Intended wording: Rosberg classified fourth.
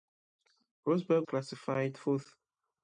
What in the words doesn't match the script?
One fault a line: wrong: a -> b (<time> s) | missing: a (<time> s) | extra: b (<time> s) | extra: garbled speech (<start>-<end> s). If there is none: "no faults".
no faults